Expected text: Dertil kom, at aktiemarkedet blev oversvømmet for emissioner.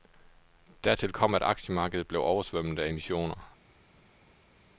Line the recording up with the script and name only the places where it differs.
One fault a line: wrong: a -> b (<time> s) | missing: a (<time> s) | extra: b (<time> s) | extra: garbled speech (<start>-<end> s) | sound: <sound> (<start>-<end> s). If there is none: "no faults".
wrong: for -> af (2.8 s)